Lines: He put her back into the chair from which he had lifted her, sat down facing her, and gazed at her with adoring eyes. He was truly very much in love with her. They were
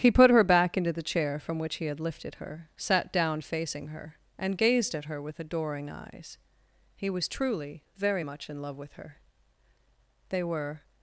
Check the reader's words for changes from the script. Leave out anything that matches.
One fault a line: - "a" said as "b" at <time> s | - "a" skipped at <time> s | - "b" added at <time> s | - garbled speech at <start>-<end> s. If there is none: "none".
none